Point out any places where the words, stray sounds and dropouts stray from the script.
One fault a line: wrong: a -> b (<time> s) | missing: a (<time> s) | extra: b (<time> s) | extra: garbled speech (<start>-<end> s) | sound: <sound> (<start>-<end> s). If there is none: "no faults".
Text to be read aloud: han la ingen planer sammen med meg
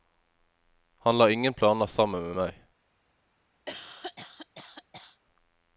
sound: cough (3.7-5.2 s)